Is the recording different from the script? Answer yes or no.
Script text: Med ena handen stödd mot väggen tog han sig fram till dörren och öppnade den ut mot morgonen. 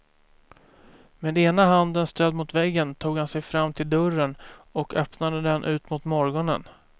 no